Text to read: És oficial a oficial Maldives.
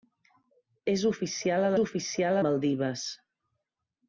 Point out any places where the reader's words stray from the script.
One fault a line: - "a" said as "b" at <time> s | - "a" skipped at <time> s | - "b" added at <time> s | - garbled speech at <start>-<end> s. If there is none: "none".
none